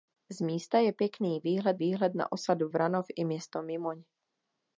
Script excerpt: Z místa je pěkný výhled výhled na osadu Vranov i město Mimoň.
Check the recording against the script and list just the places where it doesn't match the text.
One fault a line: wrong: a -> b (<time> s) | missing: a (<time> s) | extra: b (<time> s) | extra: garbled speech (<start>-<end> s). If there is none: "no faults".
no faults